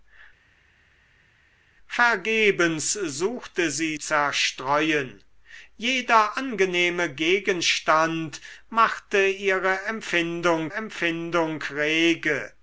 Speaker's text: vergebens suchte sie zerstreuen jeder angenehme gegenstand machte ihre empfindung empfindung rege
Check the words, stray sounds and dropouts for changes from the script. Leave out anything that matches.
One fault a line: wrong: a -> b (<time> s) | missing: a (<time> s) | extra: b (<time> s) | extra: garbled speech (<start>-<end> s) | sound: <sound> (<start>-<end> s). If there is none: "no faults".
no faults